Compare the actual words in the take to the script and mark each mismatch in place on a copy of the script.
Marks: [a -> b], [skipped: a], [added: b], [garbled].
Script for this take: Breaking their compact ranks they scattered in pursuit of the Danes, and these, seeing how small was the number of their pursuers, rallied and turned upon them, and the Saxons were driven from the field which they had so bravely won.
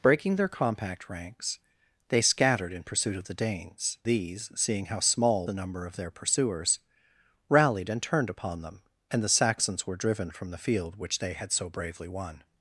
Breaking their compact ranks they scattered in pursuit of the Danes, [skipped: and] these, seeing how small [skipped: was] the number of their pursuers, rallied and turned upon them, and the Saxons were driven from the field which they had so bravely won.